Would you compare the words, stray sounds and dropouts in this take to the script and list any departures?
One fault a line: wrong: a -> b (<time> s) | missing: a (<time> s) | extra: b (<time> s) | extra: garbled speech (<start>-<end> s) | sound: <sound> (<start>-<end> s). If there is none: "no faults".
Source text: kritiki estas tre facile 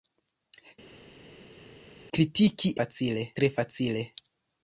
wrong: estas -> facile (2.8 s)